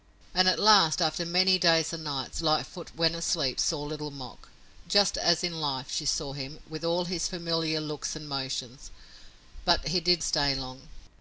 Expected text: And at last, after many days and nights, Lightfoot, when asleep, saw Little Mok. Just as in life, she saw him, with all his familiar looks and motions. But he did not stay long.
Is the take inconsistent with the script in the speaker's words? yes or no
yes